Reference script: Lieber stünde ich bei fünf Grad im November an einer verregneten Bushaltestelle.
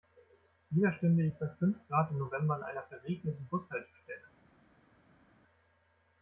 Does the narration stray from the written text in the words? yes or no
no